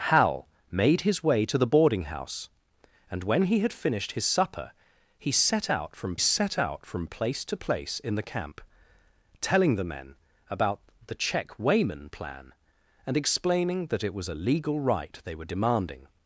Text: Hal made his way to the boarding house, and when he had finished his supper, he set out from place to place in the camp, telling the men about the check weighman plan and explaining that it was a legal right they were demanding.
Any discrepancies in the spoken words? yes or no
yes